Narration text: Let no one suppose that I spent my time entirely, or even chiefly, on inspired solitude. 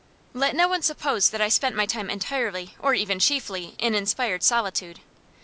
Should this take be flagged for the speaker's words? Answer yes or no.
yes